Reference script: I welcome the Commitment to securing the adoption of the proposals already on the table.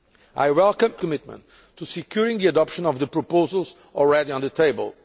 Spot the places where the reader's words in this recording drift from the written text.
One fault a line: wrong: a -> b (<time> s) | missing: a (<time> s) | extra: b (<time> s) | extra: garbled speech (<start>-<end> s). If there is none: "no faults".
no faults